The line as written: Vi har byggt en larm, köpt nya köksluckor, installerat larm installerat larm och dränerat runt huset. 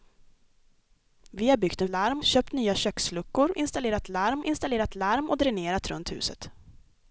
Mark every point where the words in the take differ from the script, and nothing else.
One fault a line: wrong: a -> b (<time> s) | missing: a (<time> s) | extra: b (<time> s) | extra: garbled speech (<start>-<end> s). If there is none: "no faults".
no faults